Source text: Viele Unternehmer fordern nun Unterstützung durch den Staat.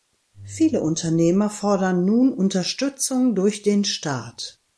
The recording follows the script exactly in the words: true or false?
true